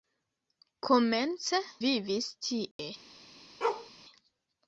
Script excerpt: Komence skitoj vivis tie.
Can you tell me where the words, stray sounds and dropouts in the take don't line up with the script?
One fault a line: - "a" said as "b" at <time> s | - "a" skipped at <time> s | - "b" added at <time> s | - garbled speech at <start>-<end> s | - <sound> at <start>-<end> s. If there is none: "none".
- "skitoj" skipped at 1.6 s
- dropout at 2.7-2.8 s
- bark at 3.6-3.9 s